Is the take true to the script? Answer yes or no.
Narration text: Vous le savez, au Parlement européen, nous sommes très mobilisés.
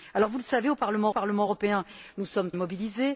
no